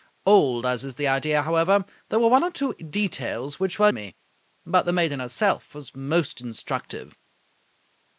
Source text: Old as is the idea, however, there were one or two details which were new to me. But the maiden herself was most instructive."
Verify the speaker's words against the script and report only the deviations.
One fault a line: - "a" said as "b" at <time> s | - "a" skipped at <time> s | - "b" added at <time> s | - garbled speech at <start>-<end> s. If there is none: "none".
- "new to" skipped at 3.9 s